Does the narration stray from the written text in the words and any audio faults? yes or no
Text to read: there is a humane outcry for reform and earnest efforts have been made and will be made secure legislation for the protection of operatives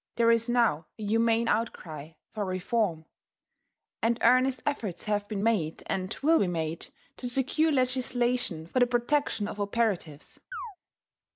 yes